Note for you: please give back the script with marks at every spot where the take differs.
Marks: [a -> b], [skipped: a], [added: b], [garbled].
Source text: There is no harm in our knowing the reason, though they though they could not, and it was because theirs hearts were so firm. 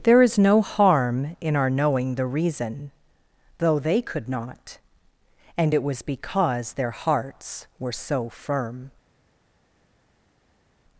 There is no harm in our knowing the reason, though they [skipped: though they] could not, and it was because [theirs -> their] hearts were so firm.